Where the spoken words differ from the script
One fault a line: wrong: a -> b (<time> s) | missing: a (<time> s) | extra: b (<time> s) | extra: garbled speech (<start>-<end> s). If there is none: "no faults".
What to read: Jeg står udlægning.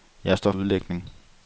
no faults